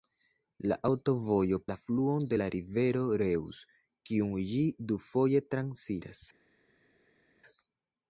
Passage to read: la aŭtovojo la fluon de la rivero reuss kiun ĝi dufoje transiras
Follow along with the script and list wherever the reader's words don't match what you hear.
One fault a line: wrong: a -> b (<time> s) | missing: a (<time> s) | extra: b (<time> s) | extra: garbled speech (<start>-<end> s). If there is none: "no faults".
no faults